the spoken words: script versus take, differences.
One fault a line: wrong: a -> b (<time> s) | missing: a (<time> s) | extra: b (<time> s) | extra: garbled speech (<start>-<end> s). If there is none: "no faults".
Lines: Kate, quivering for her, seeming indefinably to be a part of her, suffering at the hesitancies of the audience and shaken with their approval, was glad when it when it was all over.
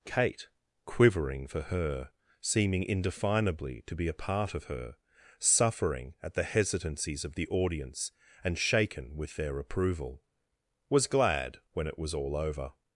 missing: when it (12.0 s)